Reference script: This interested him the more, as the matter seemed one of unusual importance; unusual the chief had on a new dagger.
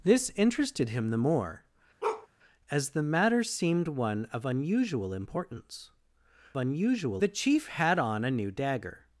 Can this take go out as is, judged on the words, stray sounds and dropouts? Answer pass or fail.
fail